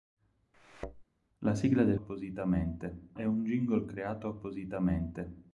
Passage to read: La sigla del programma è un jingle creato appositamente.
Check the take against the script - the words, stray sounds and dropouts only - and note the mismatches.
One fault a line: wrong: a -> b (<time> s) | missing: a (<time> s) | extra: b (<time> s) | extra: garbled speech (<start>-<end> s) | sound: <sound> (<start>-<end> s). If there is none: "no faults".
sound: thud (0.5-1.0 s)
wrong: programma -> appositamente (1.9 s)